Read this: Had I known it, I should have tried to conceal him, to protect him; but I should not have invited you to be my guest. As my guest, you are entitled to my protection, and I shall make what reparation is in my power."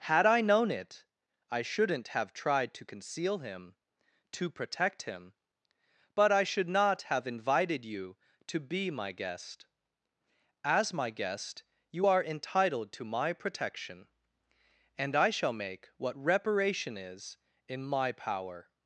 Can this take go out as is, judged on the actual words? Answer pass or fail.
fail